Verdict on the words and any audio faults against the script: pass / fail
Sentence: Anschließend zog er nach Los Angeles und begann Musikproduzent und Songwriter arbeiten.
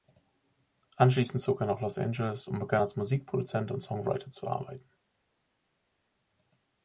fail